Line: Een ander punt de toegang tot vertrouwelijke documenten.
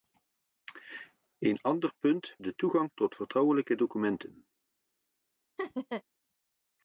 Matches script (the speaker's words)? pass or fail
pass